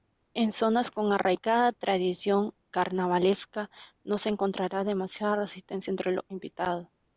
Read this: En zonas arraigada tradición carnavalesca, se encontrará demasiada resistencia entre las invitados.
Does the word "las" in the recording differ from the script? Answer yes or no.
yes